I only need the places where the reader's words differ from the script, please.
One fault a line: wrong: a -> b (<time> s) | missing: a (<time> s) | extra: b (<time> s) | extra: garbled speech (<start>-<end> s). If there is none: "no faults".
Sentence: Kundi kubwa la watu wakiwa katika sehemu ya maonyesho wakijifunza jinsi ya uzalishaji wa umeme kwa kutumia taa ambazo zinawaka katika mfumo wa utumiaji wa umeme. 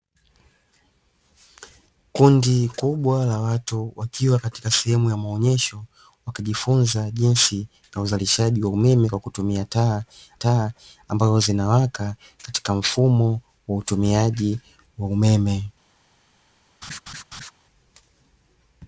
extra: taa (10.3 s)